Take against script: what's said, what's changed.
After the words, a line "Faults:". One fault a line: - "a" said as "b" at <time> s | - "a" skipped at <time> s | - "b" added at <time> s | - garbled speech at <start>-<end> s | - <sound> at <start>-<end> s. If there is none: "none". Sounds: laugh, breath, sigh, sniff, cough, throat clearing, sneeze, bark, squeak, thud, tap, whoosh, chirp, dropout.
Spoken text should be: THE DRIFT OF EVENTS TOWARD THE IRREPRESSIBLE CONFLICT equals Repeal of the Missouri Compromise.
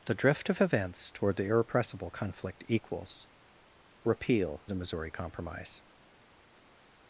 THE DRIFT OF EVENTS TOWARD THE IRREPRESSIBLE CONFLICT equals Repeal the Missouri Compromise.
Faults:
- "of" skipped at 4.7 s